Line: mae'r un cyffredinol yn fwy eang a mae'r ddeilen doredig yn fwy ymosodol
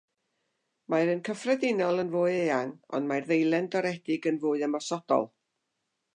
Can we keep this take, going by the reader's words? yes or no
no